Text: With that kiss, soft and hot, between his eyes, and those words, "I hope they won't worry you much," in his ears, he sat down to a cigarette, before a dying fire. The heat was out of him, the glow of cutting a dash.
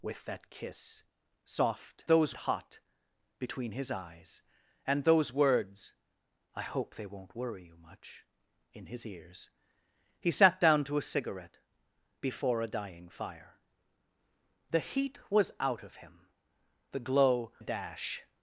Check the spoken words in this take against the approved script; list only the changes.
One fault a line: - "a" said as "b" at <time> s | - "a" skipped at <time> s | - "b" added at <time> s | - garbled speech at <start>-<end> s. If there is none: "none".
- "and" said as "those" at 2.1 s
- "of cutting" skipped at 17.5 s